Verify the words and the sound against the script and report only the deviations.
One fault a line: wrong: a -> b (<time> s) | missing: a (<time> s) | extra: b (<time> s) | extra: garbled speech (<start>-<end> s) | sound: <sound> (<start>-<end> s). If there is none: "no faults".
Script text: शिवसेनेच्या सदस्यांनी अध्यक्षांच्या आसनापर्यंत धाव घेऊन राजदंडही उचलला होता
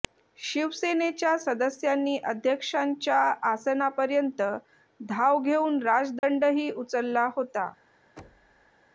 sound: dropout (6.2-6.2 s)
sound: thud (8.2-8.7 s)